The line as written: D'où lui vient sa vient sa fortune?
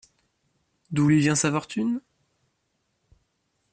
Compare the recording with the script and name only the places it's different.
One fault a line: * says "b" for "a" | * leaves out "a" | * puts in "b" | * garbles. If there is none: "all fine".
* leaves out "vient sa"